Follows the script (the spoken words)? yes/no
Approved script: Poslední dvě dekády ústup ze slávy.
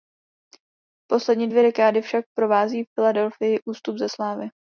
no